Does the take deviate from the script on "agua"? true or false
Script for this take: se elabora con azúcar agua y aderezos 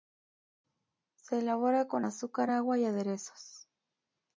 false